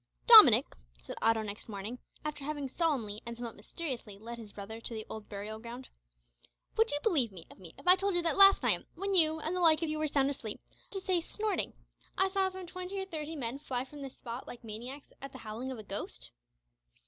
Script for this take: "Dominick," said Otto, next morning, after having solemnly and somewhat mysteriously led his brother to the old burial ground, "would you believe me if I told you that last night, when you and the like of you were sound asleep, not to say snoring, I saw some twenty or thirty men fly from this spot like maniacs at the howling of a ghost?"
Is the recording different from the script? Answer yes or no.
yes